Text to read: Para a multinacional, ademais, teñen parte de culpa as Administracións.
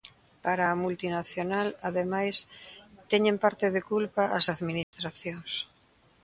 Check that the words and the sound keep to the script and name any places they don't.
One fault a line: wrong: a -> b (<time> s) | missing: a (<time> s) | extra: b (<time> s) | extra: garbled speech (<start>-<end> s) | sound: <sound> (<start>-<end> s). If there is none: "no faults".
sound: dropout (4.8-4.9 s)